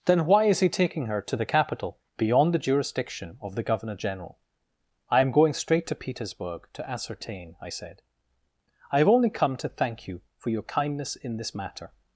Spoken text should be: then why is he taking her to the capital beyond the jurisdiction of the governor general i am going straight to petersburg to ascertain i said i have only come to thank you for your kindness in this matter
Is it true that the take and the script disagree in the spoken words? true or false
false